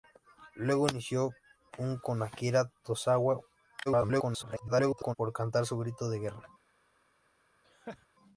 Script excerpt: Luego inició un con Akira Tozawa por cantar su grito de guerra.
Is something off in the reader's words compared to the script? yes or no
yes